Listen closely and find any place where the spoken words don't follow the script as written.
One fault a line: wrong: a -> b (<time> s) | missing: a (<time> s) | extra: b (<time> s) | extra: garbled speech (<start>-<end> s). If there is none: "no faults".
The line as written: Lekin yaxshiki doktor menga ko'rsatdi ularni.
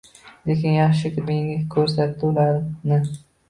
missing: doktor (1.2 s)